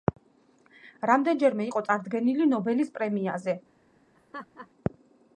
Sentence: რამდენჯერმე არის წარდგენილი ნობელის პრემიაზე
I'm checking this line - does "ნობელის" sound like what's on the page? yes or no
yes